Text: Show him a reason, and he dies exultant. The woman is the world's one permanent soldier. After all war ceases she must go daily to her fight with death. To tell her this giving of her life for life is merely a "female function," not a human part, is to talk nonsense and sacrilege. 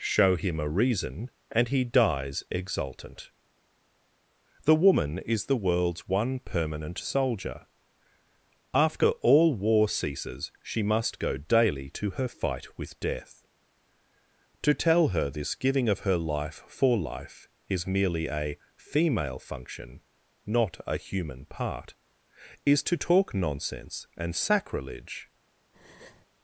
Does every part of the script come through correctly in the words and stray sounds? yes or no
no